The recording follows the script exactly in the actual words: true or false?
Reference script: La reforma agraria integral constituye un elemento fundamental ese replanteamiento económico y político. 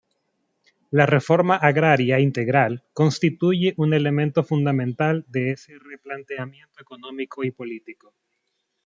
false